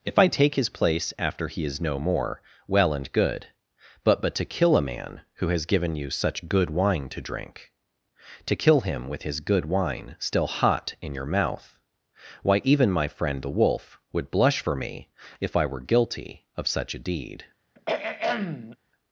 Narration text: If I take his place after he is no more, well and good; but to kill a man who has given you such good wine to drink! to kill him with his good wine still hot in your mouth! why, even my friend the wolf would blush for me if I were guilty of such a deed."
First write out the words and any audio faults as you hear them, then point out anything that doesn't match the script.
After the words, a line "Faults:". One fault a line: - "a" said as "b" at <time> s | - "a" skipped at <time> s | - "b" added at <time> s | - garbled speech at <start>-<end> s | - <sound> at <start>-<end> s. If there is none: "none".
If I take his place after he is no more, well and good; but but to kill a man who has given you such good wine to drink! to kill him with his good wine still hot in your mouth! why, even my friend the wolf would blush for me if I were guilty of such a deed."
Faults:
- "but" added at 4.2 s
- throat clearing at 17.8-18.8 s